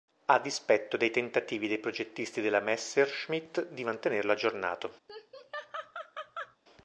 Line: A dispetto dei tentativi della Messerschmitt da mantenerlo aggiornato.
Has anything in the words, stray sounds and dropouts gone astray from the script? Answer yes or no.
yes